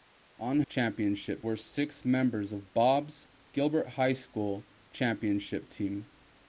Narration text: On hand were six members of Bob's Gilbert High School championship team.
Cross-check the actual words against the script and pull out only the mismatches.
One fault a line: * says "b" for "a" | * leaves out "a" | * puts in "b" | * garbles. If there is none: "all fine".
* says "championship" for "hand"